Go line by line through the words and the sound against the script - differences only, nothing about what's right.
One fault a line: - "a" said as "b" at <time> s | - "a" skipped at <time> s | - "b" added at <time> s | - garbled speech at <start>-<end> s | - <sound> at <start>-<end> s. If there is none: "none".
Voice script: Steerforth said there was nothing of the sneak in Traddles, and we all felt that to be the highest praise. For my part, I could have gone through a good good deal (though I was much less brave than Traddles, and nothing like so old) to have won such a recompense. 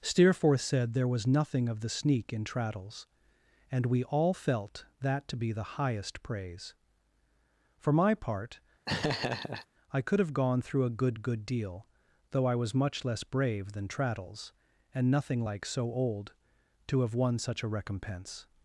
- laugh at 8.9-9.7 s